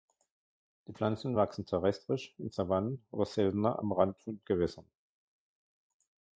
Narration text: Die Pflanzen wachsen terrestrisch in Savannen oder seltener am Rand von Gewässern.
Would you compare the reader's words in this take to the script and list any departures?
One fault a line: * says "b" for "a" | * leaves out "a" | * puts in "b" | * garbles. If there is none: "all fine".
all fine